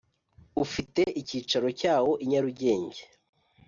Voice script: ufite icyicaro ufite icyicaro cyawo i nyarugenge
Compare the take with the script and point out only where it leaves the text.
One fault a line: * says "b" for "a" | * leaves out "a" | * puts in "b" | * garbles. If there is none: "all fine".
* leaves out "ufite icyicaro"